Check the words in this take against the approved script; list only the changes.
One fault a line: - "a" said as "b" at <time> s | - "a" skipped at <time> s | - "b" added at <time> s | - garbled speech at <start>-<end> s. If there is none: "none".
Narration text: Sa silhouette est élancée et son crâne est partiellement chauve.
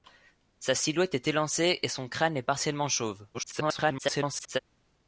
- garbled speech at 3.3-4.6 s